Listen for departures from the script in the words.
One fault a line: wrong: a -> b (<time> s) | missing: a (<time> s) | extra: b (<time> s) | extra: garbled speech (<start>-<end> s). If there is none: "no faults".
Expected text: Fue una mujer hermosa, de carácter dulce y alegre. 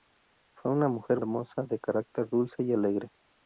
no faults